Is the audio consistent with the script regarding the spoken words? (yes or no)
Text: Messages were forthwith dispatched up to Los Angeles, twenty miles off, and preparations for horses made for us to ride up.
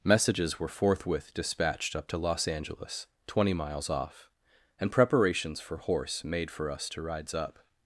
no